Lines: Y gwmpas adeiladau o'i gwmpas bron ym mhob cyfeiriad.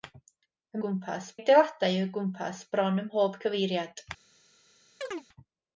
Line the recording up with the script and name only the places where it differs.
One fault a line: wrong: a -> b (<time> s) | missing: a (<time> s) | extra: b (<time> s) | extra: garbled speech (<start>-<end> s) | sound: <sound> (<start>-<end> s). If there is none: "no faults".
sound: chirp (5.0-5.3 s)